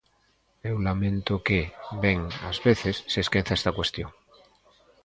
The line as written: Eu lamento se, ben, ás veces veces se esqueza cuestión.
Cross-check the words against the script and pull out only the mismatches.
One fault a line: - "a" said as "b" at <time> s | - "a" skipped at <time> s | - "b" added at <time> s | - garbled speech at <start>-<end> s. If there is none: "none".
- "se" said as "que" at 1.5 s
- "veces" skipped at 3.0 s
- "esta" added at 3.6 s